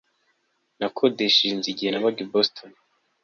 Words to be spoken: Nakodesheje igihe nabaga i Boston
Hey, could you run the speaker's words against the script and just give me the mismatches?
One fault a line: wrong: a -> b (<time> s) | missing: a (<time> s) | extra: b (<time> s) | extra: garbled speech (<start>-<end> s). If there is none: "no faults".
extra: inzu (1.5 s)